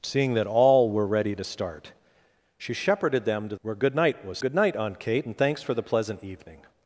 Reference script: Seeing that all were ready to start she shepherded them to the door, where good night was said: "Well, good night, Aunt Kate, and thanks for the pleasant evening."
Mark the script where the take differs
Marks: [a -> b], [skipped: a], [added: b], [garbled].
Seeing that all were ready to start she shepherded them to [skipped: the door,] where good night was [skipped: said: "Well,] good night, Aunt Kate, and thanks for the pleasant evening."